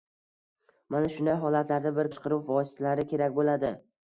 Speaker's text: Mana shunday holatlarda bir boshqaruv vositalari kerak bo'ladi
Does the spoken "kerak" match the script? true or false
true